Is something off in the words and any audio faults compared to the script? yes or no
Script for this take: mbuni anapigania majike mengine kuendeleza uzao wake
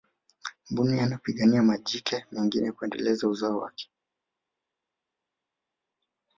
no